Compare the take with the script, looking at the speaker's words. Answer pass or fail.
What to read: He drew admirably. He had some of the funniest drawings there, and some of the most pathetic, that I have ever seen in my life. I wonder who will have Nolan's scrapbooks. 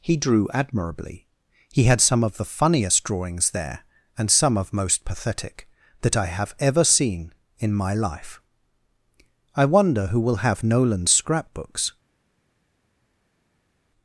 fail